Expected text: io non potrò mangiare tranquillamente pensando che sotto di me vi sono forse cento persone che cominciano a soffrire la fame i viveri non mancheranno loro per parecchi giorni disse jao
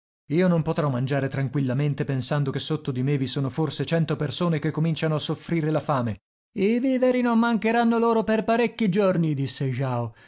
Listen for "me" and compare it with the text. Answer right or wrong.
right